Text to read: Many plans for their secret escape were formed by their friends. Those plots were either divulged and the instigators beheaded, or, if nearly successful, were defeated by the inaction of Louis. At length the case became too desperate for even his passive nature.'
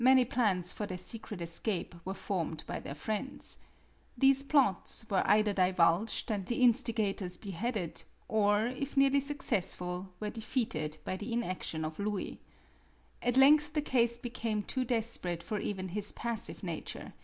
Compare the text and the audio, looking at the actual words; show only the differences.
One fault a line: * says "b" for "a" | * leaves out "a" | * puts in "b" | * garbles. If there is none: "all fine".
* says "These" for "Those"